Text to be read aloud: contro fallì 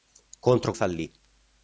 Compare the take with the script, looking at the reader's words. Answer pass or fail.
pass